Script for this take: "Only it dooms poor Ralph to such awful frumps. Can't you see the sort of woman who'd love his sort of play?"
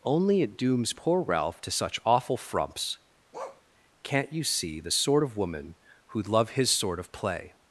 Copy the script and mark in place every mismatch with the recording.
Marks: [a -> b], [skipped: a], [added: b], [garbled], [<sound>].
"Only it dooms poor Ralph to such awful frumps. [bark] Can't you see the sort of woman who'd love his sort of play?"